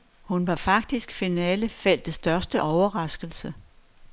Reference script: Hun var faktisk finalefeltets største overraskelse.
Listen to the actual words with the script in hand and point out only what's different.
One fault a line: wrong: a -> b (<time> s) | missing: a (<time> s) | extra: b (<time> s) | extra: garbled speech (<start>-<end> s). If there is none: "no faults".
no faults